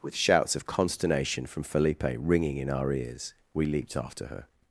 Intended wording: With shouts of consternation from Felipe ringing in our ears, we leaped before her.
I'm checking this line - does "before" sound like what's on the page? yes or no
no